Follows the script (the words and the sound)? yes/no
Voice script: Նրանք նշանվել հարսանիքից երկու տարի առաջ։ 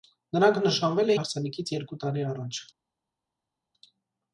yes